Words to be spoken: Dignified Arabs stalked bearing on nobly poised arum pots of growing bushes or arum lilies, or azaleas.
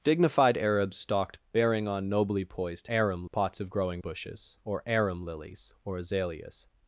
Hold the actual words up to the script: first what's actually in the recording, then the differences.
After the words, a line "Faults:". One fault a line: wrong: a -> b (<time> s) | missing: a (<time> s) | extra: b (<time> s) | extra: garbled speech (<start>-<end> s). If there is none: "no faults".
Dignified Arabs stalked bearing on nobly poised arum pots of growing bushes or arum lilies, or azaleas.
Faults:
no faults